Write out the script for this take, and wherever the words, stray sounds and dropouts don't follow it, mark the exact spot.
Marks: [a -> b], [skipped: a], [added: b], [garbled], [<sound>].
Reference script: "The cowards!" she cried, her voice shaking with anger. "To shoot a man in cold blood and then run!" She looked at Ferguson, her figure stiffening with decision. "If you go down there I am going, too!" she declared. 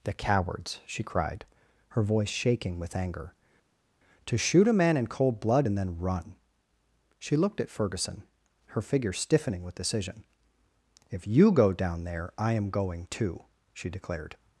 "The cowards!" she cried, her voice shaking with anger. "To shoot a man in cold blood and then run!" She looked at Ferguson, her figure stiffening with decision. "If you go down there I am going, too!" she declared.